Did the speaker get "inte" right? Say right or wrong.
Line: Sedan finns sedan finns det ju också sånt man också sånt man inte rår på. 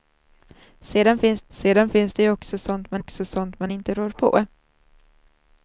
right